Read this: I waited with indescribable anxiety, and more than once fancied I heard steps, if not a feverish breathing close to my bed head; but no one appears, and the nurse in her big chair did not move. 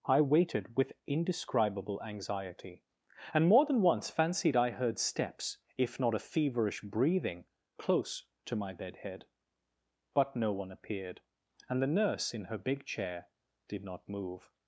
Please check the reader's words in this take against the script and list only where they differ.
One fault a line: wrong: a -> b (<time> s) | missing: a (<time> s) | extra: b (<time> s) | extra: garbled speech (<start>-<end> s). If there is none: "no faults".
wrong: appears -> appeared (10.7 s)